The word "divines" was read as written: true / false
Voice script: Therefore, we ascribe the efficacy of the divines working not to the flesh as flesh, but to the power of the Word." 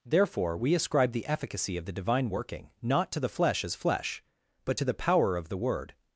false